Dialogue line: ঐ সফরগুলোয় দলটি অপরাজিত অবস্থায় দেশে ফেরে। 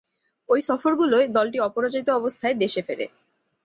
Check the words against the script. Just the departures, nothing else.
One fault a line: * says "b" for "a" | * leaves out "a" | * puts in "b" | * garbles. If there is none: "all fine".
all fine